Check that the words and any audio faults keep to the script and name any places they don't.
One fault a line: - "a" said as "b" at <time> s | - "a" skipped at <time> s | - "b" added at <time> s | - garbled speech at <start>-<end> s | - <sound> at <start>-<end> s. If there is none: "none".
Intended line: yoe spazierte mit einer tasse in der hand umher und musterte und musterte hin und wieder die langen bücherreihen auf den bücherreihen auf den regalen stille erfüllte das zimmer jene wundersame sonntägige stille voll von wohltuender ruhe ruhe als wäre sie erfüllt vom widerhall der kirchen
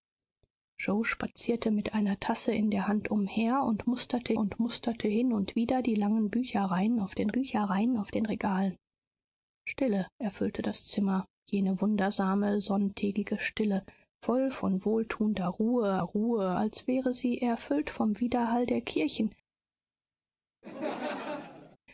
- laugh at 20.6-21.8 s